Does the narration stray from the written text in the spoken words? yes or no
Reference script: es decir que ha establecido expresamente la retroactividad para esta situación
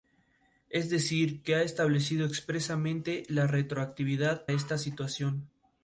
yes